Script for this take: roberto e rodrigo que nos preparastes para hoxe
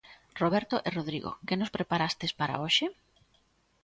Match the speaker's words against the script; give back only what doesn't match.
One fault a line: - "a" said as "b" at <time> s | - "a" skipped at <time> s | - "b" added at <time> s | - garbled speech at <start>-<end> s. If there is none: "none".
none